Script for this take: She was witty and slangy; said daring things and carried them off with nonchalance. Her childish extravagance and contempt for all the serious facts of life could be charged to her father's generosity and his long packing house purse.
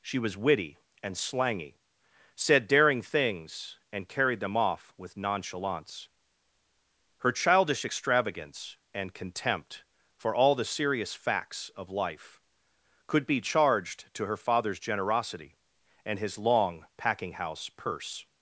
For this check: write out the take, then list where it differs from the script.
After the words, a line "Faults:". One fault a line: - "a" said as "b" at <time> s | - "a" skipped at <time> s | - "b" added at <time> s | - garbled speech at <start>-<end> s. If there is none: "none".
She was witty and slangy; said daring things and carried them off with nonchalance. Her childish extravagance and contempt for all the serious facts of life could be charged to her father's generosity and his long packing house purse.
Faults:
none